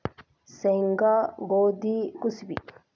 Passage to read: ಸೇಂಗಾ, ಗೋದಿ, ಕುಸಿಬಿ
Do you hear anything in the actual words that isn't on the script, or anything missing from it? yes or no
no